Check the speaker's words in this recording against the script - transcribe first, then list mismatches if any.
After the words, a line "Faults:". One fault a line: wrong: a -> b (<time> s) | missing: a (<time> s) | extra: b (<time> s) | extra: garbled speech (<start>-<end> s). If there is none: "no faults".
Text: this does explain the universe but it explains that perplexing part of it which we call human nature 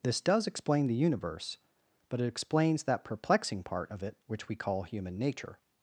this does explain the universe but it explains that perplexing part of it which we call human nature
Faults:
no faults